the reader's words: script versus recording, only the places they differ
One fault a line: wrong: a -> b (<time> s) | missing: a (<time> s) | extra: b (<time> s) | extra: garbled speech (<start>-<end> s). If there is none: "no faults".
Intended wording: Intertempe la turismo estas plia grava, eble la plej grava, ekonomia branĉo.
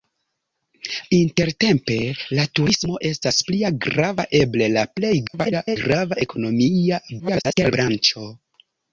extra: garbled speech (5.3-5.8 s)
extra: garbled speech (7.2-7.7 s)